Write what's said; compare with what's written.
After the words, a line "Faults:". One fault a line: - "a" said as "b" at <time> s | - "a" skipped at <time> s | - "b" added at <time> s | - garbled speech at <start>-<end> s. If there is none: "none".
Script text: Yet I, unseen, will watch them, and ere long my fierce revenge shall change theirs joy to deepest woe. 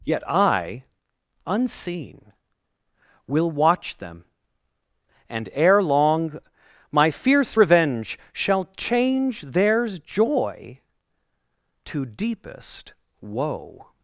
Yet I, unseen, will watch them, and ere long my fierce revenge shall change theirs joy to deepest woe.
Faults:
none